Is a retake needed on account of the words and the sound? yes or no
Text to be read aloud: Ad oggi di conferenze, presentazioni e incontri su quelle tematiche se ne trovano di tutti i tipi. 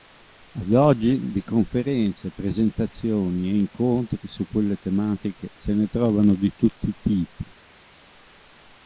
no